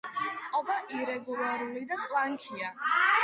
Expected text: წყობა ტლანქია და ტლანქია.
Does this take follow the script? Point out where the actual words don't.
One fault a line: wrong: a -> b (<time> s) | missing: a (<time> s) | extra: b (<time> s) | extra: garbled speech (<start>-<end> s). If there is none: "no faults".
wrong: ტლანქია -> ირეგულარული (1.0 s)